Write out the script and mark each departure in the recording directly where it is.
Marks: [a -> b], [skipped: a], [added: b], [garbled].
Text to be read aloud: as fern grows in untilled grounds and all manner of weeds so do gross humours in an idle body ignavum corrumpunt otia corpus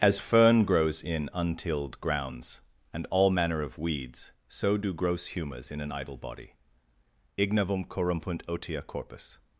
as fern grows in untilled grounds and all manner of weeds so do gross humours in an idle body ignavum corrumpunt otia corpus